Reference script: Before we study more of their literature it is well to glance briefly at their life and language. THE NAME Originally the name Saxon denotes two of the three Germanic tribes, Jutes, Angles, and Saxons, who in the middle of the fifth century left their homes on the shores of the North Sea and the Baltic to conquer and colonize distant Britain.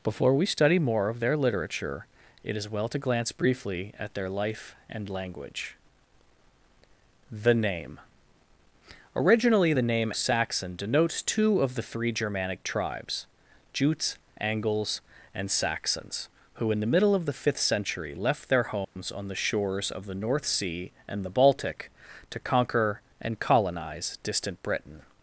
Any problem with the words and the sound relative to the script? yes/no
yes